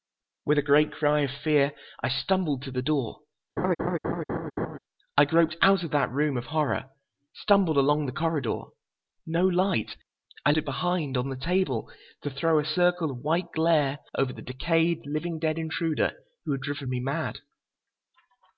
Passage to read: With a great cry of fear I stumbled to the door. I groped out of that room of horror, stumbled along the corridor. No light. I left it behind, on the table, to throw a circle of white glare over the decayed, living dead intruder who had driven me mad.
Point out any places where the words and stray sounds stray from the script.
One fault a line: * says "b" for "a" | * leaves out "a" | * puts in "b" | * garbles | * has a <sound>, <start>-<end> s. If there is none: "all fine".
* has a laugh, 3.6-4.8 s
* leaves out "left"